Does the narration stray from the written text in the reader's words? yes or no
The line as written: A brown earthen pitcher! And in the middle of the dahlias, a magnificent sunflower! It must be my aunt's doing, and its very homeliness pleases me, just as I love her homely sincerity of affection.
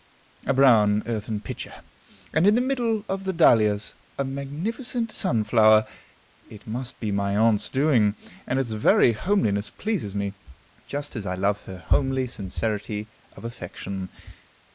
no